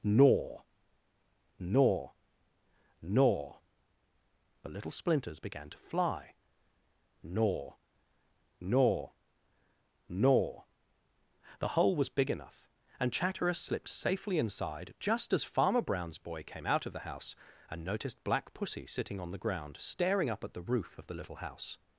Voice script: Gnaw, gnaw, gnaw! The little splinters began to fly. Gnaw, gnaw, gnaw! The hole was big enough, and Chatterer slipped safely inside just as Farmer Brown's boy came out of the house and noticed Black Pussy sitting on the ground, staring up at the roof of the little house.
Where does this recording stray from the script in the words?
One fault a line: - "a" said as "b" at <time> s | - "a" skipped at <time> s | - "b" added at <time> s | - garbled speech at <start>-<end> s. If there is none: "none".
none